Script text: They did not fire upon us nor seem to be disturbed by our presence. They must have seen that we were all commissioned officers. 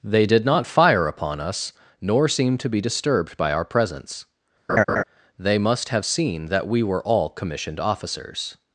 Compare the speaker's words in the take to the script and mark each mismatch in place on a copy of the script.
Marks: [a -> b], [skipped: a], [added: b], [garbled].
They did not fire upon us nor seem to be disturbed by our presence. They must have seen that we were all commissioned officers.